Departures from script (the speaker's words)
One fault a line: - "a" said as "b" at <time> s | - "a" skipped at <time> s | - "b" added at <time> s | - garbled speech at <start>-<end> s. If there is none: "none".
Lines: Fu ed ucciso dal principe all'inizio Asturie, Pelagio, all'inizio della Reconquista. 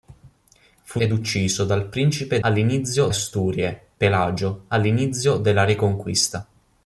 none